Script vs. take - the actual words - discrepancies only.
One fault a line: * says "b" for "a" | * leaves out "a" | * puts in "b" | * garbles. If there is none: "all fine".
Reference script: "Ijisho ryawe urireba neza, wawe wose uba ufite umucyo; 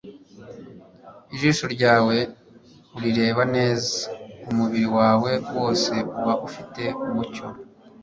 * puts in "umubiri"